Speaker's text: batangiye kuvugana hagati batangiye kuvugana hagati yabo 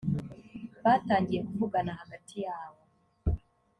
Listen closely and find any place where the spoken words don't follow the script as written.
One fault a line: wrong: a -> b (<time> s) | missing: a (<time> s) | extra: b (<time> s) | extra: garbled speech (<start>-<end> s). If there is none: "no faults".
missing: batangiye kuvugana hagati (2.4 s)